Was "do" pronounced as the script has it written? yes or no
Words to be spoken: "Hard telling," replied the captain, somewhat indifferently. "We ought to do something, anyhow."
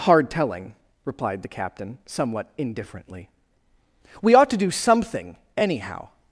yes